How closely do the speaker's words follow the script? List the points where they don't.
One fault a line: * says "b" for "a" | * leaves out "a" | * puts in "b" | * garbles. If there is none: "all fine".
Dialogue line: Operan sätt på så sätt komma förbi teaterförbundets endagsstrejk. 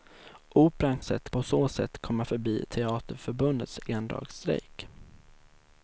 all fine